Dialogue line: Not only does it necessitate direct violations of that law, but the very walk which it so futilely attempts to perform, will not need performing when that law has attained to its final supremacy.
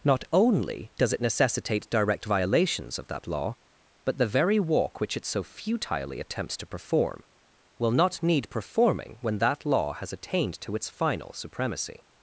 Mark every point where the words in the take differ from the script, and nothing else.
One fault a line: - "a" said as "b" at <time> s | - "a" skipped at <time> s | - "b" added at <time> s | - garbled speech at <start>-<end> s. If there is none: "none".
none